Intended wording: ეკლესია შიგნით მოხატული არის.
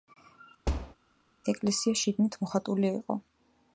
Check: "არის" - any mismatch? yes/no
yes